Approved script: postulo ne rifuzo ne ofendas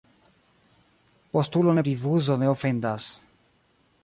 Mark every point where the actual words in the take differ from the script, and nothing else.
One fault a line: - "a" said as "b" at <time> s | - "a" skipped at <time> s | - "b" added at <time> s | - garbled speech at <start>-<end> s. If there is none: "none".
none